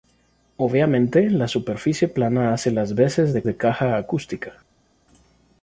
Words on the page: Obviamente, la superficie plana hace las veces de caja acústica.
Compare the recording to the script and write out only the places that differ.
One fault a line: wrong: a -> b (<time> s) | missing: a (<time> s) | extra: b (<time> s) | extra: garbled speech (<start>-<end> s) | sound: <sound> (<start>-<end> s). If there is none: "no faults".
extra: de (3.4 s)